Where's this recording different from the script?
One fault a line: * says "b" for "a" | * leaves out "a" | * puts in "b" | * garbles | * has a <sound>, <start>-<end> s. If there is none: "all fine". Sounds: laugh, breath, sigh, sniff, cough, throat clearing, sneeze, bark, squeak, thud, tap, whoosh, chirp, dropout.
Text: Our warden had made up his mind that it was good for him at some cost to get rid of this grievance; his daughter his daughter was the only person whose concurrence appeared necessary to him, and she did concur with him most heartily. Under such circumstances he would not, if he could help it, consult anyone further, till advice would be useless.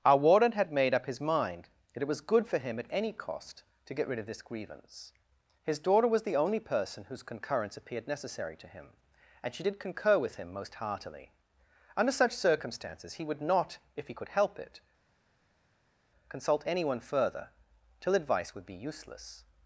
* says "any" for "some"
* leaves out "his daughter"